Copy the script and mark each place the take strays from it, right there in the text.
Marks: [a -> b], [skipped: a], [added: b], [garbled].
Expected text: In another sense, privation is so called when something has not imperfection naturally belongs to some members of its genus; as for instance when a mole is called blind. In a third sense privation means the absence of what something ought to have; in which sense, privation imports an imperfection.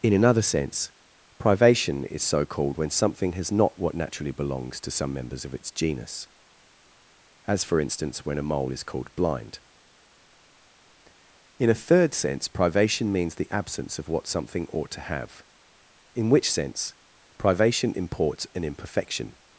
In another sense, privation is so called when something has not [imperfection -> what] naturally belongs to some members of its genus; as for instance when a mole is called blind. In a third sense privation means the absence of what something ought to have; in which sense, privation imports an imperfection.